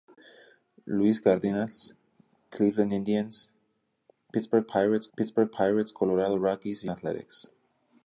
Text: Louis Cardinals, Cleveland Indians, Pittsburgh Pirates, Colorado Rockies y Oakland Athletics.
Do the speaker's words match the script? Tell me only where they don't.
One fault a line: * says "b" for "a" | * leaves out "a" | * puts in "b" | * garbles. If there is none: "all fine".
* puts in "Pittsburgh Pirates"
* leaves out "Oakland"